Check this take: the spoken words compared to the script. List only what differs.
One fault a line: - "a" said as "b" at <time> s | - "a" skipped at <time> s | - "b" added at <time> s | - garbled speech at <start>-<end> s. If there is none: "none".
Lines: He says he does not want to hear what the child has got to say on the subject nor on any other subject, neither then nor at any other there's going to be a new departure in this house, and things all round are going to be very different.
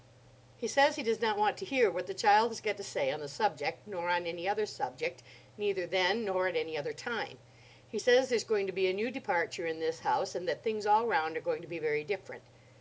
- "time He says" added at 6.9 s
- "that" added at 10.5 s